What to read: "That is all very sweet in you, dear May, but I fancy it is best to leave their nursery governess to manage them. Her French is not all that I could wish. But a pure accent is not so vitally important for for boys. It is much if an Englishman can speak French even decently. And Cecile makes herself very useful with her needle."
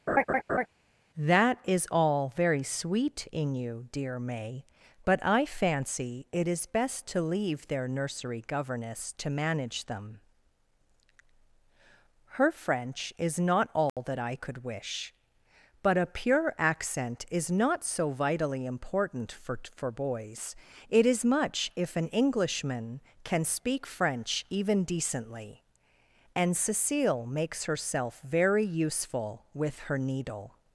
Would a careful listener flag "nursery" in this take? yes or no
no